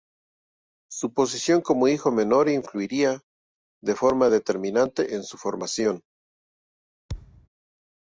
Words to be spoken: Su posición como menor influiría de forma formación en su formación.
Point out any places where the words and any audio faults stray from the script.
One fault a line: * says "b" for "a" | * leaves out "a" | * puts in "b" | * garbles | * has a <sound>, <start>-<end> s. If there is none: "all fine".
* puts in "hijo"
* says "determinante" for "formación"
* has a thud, 7.1-7.5 s